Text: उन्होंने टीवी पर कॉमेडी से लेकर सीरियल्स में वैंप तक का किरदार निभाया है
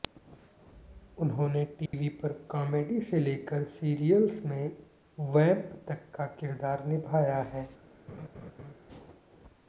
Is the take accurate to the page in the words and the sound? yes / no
no